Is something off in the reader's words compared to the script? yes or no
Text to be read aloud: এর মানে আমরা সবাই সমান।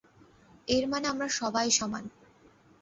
no